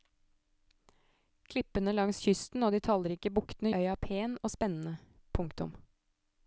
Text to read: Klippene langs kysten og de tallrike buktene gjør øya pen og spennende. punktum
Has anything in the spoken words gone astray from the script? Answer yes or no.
yes